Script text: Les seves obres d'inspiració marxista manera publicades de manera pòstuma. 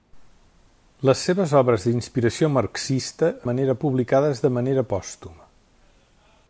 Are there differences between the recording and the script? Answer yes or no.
no